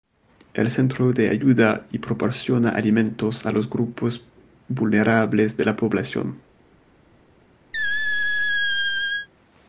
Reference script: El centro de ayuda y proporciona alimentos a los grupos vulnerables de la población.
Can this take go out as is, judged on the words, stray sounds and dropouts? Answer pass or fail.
fail